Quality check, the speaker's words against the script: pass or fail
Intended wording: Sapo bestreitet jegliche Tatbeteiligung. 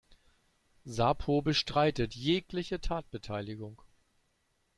pass